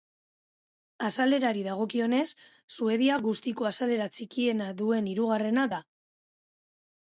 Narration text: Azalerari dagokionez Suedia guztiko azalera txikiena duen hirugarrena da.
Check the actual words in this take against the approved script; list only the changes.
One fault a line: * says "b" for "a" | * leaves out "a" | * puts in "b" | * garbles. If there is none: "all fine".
all fine